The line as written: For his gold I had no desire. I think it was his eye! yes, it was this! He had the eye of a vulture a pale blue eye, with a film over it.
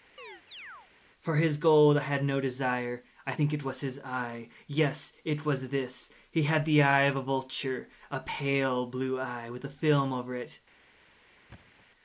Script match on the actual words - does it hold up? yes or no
yes